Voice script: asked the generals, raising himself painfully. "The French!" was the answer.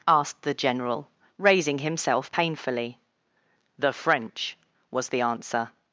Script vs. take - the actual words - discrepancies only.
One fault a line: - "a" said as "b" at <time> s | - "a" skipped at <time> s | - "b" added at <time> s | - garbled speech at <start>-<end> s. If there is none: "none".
- "generals" said as "general" at 0.6 s